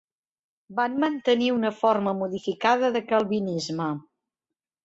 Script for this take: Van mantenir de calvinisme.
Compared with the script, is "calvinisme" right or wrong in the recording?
right